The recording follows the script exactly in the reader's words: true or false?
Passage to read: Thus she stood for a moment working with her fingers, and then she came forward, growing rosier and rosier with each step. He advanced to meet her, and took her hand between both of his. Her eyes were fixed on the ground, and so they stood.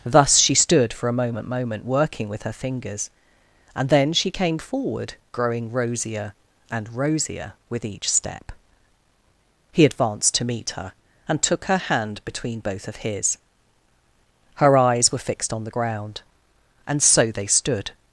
false